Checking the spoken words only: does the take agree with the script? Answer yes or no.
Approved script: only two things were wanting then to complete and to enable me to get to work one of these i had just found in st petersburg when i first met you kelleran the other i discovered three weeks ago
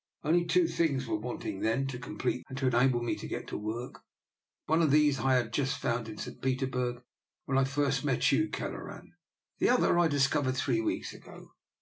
yes